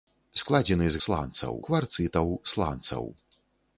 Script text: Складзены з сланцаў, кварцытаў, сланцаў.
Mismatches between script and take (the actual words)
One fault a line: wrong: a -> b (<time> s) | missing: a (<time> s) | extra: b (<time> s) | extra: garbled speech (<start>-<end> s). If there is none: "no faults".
no faults